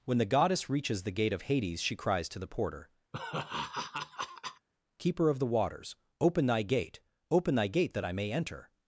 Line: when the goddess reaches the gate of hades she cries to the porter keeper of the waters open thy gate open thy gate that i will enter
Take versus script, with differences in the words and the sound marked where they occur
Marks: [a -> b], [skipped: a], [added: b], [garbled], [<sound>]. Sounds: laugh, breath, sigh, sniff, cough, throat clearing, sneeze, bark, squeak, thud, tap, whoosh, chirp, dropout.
when the goddess reaches the gate of hades she cries to the porter [laugh] keeper of the waters open thy gate open thy gate that i [will -> may] enter